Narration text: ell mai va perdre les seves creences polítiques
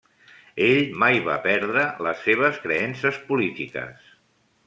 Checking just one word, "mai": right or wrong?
right